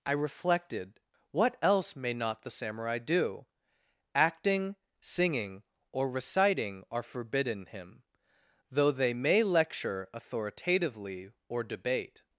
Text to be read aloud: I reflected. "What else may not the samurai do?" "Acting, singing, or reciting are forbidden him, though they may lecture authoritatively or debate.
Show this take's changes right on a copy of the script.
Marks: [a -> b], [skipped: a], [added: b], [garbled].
I reflected. "What else may not the samurai do?" "Acting, singing, or reciting are forbidden him, though they may lecture authoritatively or debate.